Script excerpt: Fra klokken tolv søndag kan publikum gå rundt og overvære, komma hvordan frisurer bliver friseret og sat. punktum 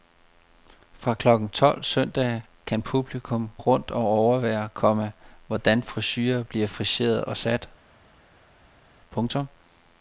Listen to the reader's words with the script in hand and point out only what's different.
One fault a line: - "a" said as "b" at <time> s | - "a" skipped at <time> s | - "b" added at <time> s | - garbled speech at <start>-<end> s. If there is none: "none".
- "gå" skipped at 3.5 s